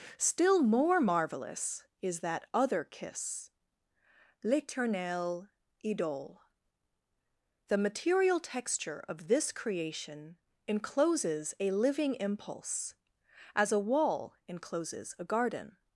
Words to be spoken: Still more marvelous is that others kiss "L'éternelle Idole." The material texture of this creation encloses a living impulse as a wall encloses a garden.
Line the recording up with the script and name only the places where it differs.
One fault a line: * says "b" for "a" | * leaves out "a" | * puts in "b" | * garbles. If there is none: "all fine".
* says "other" for "others"